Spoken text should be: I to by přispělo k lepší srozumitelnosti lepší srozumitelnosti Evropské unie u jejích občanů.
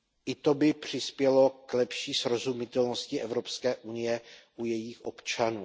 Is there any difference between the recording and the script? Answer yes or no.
yes